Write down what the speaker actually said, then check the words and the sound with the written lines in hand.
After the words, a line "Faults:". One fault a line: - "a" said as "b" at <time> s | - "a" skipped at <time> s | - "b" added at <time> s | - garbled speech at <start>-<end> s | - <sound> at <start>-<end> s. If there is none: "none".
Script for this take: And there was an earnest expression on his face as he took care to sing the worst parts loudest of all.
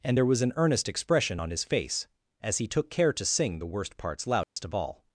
And there was an earnest expression on his face as he took care to sing the worst parts loudest of all.
Faults:
- dropout at 4.4-4.6 s